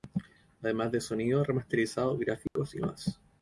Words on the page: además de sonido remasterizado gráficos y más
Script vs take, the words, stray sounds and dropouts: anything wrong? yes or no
yes